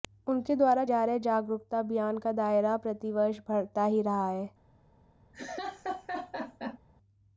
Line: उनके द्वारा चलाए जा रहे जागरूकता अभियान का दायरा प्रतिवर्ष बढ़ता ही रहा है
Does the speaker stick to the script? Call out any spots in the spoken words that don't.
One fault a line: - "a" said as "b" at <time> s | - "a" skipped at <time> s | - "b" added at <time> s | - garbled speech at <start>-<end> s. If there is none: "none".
- "चलाए" skipped at 0.8 s